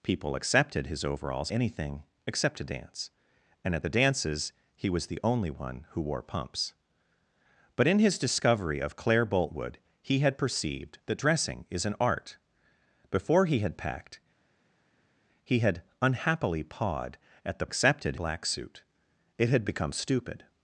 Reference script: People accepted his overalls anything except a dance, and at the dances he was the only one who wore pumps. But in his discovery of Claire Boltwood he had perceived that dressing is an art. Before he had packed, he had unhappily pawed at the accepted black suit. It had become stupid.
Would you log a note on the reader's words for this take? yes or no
no